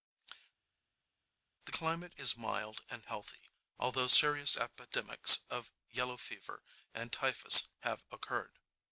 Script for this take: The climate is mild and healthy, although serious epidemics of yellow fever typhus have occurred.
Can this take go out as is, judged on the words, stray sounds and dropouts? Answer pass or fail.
fail